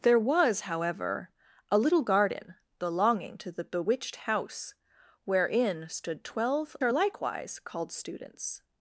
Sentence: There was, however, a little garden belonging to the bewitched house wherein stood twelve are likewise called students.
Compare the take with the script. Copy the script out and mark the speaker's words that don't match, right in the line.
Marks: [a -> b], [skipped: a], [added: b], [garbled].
There was, however, a little garden belonging to the bewitched house wherein stood twelve are likewise called students.